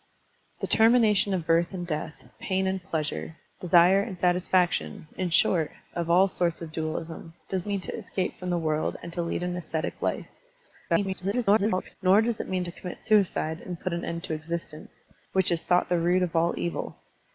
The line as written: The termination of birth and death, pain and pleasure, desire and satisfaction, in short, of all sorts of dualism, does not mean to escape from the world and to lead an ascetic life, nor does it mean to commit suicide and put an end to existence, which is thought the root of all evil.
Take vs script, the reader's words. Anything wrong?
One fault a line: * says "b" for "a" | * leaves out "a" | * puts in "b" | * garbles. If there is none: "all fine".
* leaves out "not"
* garbles